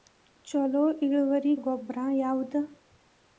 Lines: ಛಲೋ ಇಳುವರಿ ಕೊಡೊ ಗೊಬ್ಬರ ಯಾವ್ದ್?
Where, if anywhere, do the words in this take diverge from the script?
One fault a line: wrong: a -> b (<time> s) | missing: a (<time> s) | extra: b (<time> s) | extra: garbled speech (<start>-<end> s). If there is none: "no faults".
missing: ಕೊಡೊ (1.5 s)